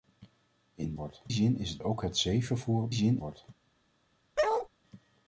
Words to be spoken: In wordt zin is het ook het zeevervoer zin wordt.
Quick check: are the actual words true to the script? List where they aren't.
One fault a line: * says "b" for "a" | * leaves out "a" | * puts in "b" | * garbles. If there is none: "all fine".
all fine